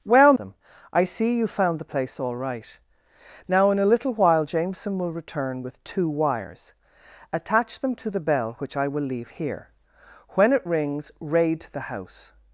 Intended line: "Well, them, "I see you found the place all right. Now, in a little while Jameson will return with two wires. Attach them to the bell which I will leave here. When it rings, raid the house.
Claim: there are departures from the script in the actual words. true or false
false